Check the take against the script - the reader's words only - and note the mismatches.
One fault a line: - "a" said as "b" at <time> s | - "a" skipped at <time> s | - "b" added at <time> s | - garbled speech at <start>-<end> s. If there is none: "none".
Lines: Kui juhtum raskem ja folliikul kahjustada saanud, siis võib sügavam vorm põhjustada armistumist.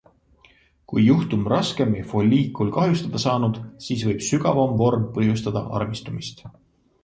none